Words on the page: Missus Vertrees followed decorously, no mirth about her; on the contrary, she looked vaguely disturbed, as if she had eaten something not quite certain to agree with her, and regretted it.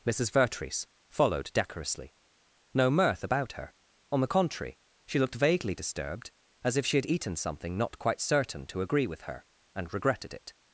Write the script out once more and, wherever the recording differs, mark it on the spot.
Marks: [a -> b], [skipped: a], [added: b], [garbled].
Missus Vertrees followed decorously, no mirth about her; on the contrary, she looked vaguely disturbed, as if she had eaten something not quite certain to agree with her, and regretted it.